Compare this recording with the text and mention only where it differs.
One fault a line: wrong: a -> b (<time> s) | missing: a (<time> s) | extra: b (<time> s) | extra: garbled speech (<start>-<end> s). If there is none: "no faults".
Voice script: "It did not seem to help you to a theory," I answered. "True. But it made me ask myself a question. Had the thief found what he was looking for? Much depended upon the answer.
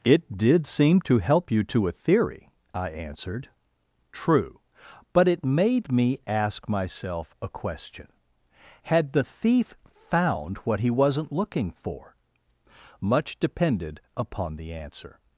missing: not (0.7 s)
wrong: was -> wasn't (10.9 s)